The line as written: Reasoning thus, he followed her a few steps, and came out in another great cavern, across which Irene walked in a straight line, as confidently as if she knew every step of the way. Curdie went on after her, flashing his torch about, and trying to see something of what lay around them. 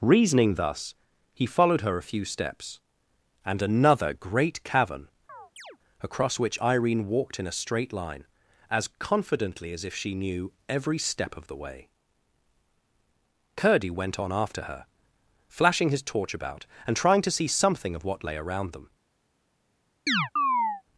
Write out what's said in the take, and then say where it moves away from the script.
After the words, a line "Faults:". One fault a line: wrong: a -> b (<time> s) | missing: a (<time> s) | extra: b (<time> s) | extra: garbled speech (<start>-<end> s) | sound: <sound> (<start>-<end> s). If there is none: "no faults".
Reasoning thus, he followed her a few steps, and another great cavern, across which Irene walked in a straight line, as confidently as if she knew every step of the way. Curdie went on after her, flashing his torch about, and trying to see something of what lay around them.
Faults:
missing: came out in (3.6 s)
sound: chirp (5.3-5.8 s)
sound: chirp (20.1-20.8 s)